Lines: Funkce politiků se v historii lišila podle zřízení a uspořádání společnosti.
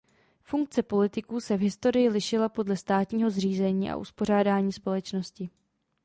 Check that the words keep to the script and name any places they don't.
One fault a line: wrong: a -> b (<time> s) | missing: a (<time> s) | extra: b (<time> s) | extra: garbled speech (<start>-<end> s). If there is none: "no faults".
extra: státního (2.8 s)